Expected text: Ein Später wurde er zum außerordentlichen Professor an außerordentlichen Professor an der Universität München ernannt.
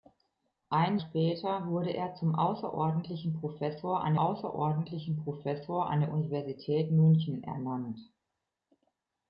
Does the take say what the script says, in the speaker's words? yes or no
yes